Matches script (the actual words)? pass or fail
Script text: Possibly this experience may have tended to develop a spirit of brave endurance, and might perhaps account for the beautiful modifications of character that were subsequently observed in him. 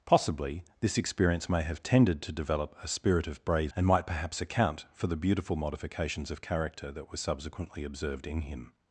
fail